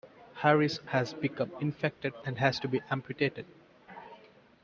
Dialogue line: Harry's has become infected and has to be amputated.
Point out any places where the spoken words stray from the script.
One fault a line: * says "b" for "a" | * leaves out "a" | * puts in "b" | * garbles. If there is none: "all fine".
all fine